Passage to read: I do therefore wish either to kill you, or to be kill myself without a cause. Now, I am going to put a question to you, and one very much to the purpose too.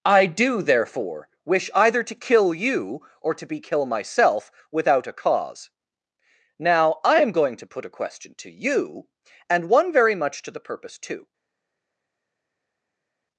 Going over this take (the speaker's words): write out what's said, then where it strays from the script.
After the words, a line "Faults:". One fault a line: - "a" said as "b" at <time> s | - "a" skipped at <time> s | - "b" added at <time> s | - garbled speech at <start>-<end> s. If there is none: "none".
I do therefore wish either to kill you, or to be kill myself without a cause. Now, I am going to put a question to you, and one very much to the purpose too.
Faults:
none